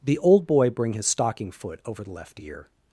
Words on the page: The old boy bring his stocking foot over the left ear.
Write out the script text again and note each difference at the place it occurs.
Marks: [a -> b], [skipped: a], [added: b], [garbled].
The old boy bring his stocking foot over the left ear.